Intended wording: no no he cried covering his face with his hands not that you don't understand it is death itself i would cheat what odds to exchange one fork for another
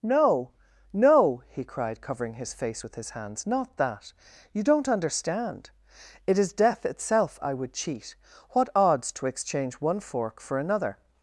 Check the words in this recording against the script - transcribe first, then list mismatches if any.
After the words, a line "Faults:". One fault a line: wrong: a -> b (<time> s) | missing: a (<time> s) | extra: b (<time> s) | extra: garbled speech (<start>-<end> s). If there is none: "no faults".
no no he cried covering his face with his hands not that you don't understand it is death itself i would cheat what odds to exchange one fork for another
Faults:
no faults